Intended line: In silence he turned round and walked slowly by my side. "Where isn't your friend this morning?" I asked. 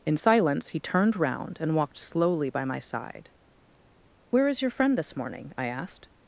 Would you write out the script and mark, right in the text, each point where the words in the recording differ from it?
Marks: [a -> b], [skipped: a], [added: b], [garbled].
In silence he turned round and walked slowly by my side. "Where [isn't -> is] your friend this morning?" I asked.